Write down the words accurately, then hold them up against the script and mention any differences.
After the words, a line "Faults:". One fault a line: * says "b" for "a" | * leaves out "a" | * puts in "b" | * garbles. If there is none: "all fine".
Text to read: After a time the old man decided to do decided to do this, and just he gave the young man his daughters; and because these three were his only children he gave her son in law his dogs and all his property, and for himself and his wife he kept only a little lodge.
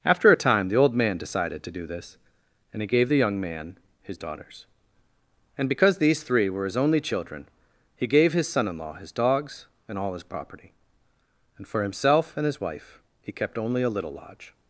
After a time the old man decided to do this, and he gave the young man his daughters; and because these three were his only children he gave his son in law his dogs and all his property, and for himself and his wife he kept only a little lodge.
Faults:
* leaves out "decided to do"
* leaves out "just"
* says "his" for "her"